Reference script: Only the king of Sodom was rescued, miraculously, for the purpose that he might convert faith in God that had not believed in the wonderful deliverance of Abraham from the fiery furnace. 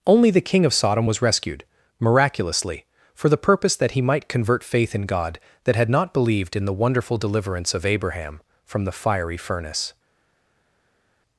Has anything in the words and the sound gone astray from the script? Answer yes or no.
no